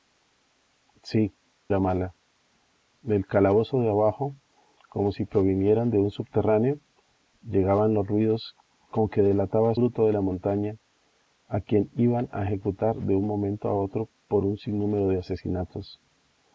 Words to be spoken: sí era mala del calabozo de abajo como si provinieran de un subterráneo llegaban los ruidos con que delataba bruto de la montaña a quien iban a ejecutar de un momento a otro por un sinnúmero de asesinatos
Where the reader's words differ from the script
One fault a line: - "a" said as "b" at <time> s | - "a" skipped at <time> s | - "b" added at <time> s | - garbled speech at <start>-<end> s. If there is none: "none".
none